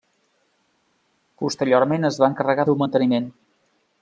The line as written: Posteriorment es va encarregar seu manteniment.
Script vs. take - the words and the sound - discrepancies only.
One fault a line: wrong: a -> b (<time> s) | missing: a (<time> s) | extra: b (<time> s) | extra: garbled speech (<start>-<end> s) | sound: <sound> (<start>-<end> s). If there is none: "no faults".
no faults